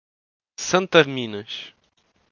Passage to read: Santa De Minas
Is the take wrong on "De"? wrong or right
right